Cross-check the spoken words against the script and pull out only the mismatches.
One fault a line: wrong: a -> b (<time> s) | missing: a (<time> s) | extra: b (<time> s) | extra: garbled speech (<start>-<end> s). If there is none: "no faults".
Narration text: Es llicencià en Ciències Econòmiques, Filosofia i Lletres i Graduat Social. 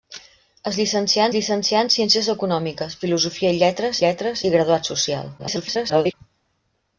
extra: llicencià (1.3 s)
extra: Lletres (4.1 s)
extra: garbled speech (5.4-6.1 s)